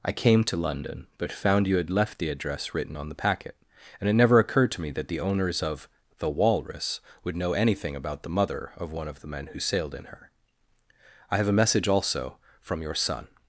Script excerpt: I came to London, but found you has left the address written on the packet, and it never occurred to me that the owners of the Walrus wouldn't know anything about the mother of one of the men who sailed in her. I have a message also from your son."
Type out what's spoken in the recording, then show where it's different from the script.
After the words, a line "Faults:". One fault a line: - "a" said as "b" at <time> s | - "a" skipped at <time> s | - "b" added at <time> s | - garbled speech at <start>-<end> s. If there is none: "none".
I came to London, but found you had left the address written on the packet, and it never occurred to me that the owners of the Walrus would know anything about the mother of one of the men who sailed in her. I have a message also from your son."
Faults:
- "has" said as "had" at 1.8 s
- "wouldn't" said as "would" at 7.2 s